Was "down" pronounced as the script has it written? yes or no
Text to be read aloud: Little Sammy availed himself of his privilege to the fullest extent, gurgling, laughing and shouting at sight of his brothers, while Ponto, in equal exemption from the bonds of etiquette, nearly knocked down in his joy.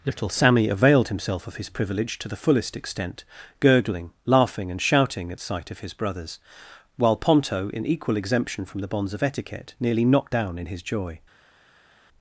yes